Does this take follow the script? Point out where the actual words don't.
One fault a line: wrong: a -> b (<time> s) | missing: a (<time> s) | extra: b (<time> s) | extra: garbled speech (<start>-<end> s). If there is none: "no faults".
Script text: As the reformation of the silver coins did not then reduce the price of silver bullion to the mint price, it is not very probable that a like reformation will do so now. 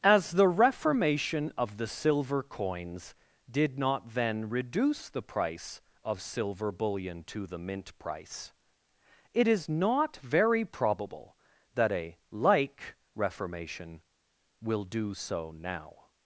no faults